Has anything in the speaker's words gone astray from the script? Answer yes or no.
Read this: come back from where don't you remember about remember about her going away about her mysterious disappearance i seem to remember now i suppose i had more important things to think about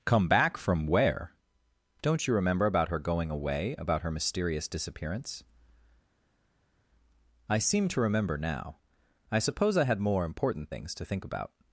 yes